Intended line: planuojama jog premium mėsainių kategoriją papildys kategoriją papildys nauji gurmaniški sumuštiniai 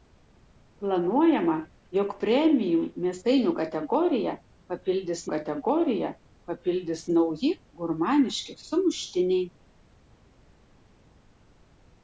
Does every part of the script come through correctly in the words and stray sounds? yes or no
yes